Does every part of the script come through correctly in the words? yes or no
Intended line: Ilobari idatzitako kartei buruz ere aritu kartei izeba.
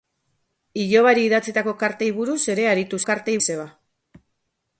yes